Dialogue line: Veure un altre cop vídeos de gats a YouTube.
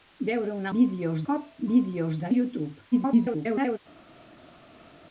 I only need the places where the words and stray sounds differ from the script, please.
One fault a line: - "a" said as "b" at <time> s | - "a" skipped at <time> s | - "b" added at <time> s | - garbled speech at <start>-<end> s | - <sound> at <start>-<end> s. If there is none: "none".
- "altre" said as "vídeos" at 0.8 s
- "gats" skipped at 2.3 s
- garbled speech at 2.9-3.8 s